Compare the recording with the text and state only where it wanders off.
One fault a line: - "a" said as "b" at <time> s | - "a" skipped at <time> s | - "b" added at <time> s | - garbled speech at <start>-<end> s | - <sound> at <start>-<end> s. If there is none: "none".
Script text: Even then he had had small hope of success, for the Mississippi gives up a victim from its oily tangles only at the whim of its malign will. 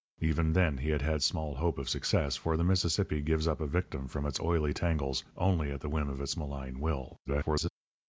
- garbled speech at 7.3-7.7 s